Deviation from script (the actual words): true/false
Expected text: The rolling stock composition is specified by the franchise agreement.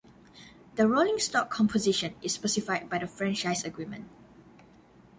false